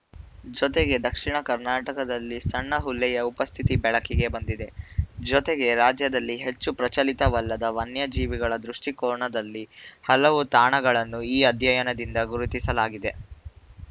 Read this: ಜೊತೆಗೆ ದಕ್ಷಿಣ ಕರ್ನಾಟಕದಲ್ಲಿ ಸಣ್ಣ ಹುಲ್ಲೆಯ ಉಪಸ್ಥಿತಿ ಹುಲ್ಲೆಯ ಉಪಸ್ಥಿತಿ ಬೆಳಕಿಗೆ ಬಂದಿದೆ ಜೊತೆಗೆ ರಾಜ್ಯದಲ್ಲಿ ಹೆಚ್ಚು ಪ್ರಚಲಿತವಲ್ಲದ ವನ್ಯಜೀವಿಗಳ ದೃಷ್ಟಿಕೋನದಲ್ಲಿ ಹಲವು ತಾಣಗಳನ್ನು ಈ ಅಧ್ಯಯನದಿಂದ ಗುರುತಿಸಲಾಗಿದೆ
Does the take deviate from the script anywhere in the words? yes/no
yes